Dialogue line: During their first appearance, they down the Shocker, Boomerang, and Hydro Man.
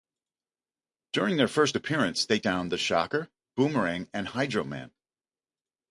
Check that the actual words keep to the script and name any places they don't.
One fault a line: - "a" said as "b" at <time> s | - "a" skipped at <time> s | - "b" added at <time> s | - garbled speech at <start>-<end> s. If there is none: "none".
none